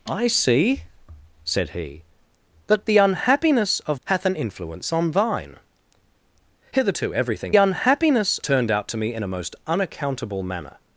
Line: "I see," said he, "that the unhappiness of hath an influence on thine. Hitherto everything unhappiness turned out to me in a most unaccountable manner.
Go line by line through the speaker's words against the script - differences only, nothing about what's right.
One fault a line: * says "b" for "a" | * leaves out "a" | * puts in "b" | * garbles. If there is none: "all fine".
all fine